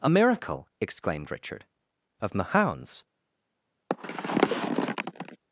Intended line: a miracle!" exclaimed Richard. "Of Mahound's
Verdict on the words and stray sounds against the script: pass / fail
fail